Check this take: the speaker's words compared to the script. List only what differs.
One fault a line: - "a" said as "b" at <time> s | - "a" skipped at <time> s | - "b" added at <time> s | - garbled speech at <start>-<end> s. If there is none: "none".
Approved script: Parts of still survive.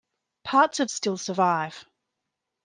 none